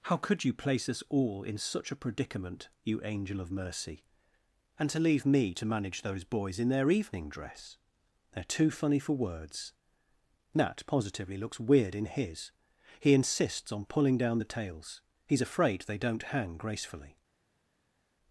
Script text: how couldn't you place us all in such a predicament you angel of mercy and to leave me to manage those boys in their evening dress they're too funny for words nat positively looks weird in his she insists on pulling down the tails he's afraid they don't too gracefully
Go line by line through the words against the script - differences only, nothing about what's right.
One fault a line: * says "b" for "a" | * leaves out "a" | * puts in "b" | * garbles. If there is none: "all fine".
* says "could" for "couldn't"
* says "he" for "she"
* says "hang" for "too"